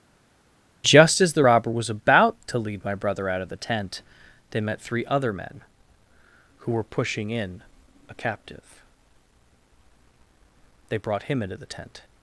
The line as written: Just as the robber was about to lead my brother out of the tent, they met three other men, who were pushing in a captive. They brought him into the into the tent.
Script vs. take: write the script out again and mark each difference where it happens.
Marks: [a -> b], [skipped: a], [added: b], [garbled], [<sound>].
Just as the robber was about to lead my brother out of the tent, they met three other men, who were pushing in a captive. They brought him into the [skipped: into the] tent.